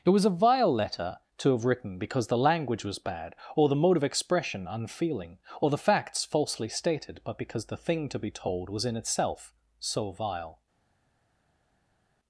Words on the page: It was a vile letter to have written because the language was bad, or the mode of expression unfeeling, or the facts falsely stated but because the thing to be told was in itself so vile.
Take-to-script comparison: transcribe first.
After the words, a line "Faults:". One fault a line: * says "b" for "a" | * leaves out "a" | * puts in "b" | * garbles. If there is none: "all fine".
It was a vile letter to have written because the language was bad, or the mode of expression unfeeling, or the facts falsely stated but because the thing to be told was in itself so vile.
Faults:
all fine